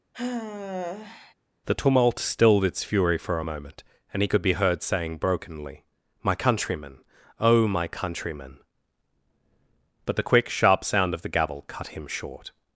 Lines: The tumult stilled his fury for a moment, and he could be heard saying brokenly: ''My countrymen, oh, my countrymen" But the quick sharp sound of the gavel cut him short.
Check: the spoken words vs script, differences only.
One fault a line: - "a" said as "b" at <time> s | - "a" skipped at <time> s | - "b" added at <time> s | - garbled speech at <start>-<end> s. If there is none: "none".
- "his" said as "its" at 2.6 s